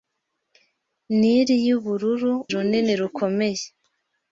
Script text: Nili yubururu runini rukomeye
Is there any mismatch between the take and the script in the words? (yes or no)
no